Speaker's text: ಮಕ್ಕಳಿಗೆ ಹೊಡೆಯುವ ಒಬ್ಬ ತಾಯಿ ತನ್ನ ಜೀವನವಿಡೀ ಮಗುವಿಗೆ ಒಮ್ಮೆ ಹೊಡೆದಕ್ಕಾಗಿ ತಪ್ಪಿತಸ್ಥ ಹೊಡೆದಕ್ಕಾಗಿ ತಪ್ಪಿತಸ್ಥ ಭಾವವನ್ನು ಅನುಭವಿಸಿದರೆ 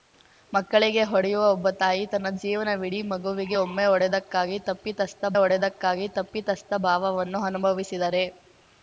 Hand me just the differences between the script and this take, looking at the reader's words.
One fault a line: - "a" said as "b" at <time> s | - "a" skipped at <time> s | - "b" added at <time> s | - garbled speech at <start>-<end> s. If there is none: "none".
none